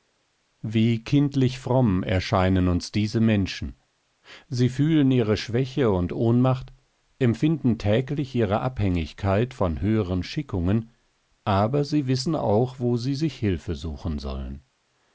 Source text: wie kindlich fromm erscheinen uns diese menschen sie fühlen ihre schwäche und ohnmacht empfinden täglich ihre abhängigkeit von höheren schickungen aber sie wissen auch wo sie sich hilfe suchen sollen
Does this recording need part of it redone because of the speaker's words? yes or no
no